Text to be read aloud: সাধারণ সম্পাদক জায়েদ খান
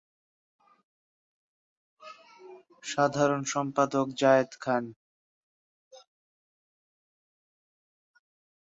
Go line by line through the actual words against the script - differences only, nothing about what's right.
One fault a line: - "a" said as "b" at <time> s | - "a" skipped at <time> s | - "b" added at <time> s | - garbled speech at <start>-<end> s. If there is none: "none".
none